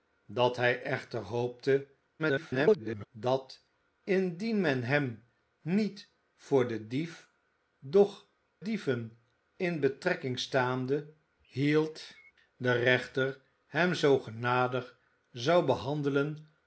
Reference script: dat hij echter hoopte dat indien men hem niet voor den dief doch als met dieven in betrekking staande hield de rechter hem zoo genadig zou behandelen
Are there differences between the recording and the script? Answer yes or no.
yes